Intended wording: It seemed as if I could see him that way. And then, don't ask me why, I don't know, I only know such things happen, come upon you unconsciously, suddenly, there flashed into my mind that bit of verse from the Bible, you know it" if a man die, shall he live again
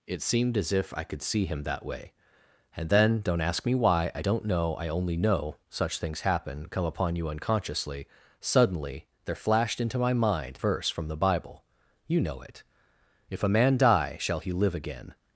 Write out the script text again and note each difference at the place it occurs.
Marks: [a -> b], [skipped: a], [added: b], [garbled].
It seemed as if I could see him that way. And then, don't ask me why, I don't know, I only know such things happen, come upon you unconsciously, suddenly, there flashed into my mind [skipped: that bit of] verse from the Bible, you know it" if a man die, shall he live again